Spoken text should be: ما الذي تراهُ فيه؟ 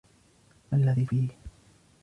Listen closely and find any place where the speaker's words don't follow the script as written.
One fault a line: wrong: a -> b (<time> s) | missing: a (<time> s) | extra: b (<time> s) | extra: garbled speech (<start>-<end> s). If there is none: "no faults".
missing: تراهُ (1.1 s)